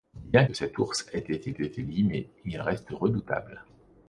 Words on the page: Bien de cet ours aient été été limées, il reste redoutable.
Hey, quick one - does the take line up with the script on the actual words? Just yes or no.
yes